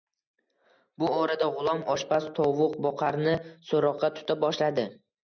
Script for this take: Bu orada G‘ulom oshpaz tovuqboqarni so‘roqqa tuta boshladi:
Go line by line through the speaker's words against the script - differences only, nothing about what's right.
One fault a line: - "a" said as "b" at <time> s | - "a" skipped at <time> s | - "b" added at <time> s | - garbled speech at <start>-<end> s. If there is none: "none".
none